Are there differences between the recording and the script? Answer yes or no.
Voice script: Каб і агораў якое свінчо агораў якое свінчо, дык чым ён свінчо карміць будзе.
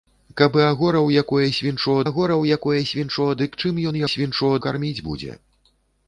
no